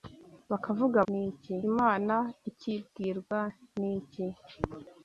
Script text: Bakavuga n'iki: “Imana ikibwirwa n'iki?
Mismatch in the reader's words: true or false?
false